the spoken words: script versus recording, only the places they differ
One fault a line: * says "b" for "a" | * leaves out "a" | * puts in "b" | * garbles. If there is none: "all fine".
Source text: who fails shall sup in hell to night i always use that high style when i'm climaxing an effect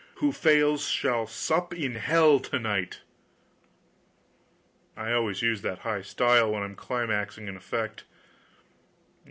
all fine